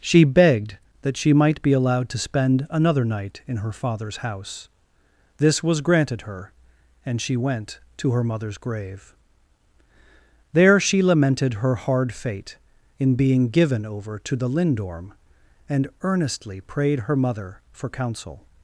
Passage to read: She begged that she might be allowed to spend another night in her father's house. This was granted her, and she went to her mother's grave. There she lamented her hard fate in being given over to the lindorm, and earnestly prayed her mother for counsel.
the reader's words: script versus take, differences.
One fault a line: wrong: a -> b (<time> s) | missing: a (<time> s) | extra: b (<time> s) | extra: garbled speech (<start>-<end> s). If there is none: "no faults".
no faults